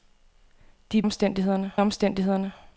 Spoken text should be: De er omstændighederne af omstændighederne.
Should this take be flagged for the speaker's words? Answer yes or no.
no